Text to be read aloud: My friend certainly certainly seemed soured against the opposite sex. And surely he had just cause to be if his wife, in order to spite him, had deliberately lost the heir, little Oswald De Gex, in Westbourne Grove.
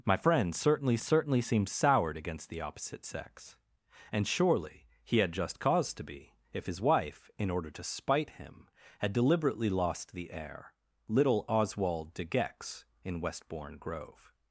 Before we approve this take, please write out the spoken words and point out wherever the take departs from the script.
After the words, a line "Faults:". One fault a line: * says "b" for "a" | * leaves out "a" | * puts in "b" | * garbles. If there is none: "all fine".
My friend certainly certainly seemed soured against the opposite sex. And surely he had just cause to be if his wife, in order to spite him, had deliberately lost the heir, little Oswald De Gex, in Westbourne Grove.
Faults:
all fine